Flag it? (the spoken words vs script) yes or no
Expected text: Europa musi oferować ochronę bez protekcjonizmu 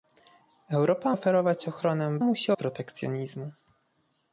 yes